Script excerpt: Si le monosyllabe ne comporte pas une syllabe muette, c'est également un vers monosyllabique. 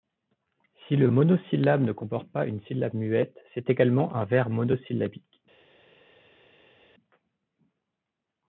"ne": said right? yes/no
yes